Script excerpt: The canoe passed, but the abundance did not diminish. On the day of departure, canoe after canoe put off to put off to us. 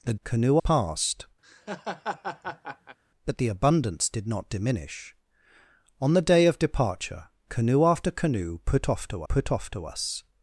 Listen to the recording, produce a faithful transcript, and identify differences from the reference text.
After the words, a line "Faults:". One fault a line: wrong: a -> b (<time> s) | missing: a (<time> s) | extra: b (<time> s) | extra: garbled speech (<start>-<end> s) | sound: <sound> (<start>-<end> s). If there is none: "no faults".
The canoe passed, but the abundance did not diminish. On the day of departure, canoe after canoe put off to put off to us.
Faults:
sound: laugh (1.4-3.0 s)